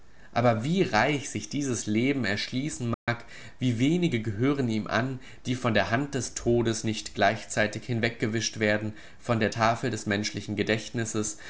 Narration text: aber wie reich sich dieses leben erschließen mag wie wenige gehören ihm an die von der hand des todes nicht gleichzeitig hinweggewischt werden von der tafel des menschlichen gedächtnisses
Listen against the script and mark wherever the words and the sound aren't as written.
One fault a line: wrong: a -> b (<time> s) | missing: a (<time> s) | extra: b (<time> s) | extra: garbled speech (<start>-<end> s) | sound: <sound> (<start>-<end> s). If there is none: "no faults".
sound: dropout (2.9-3.1 s)